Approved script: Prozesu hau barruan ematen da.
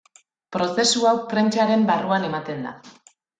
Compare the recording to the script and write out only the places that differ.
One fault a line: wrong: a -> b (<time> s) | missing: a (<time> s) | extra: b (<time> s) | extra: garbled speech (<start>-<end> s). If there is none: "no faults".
extra: prentsaren (1.4 s)